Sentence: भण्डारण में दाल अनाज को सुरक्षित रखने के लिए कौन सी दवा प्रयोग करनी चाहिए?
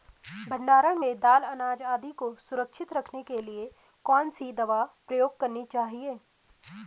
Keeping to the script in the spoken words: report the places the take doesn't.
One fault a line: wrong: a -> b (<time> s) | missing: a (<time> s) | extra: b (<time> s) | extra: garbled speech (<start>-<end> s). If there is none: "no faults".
extra: आदि (1.8 s)